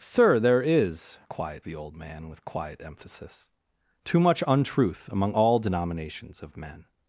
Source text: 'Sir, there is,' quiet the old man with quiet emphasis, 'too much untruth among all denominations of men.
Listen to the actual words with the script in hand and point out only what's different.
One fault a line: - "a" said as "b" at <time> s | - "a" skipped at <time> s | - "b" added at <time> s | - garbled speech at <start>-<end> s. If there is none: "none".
none